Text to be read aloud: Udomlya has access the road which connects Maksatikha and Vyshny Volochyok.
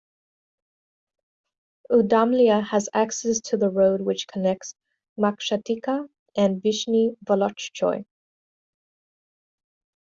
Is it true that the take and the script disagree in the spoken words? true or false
true